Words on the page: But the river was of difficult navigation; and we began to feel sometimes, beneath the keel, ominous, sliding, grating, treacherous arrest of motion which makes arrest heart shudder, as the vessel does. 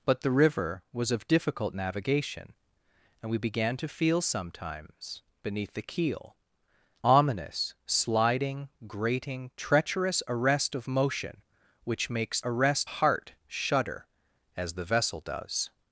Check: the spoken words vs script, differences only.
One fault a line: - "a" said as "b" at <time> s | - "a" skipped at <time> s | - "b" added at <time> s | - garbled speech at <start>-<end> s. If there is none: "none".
none